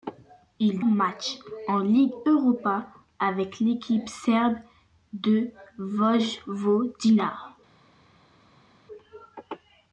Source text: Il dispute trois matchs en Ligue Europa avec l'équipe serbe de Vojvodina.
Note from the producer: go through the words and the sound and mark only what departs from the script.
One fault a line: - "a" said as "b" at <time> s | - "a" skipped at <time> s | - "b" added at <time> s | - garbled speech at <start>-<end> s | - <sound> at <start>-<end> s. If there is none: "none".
- "dispute trois" skipped at 0.8 s